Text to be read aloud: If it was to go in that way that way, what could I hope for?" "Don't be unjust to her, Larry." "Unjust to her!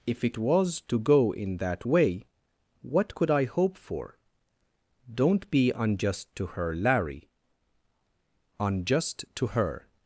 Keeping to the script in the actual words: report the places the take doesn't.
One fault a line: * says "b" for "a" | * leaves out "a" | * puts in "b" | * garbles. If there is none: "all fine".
* leaves out "that way"